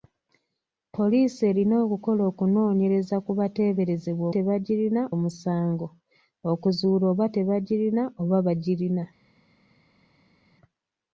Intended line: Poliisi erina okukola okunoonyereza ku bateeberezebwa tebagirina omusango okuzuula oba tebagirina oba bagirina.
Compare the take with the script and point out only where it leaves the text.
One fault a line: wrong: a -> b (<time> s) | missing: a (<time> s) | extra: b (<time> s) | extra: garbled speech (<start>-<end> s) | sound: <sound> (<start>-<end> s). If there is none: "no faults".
no faults